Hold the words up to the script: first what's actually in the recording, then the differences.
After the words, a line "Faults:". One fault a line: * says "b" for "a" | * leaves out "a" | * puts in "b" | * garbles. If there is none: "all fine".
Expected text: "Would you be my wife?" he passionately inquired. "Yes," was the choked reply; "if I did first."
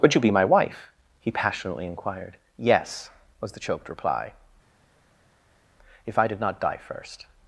"Would you be my wife?" he passionately inquired. "Yes," was the choked reply; "if I did not die first."
Faults:
* puts in "not die"